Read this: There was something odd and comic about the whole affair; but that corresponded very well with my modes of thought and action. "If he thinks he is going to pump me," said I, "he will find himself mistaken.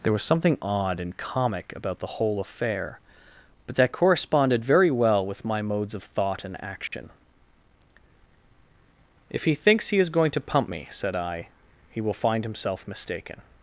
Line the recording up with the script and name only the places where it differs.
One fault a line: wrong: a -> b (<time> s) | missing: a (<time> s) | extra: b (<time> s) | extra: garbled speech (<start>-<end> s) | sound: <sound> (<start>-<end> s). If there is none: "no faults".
sound: dropout (6.9-6.9 s)